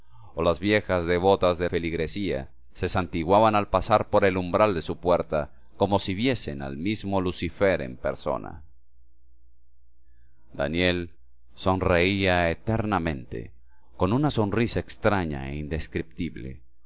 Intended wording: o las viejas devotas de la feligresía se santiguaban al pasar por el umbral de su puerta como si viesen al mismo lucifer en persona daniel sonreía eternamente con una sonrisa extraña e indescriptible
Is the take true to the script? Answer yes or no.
no